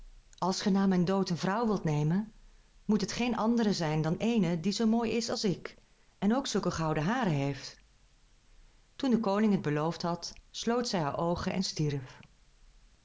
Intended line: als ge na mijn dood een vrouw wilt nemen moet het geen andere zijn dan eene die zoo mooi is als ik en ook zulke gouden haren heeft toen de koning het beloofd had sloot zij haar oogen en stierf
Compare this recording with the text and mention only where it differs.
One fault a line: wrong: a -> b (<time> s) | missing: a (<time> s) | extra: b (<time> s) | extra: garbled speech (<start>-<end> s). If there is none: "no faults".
no faults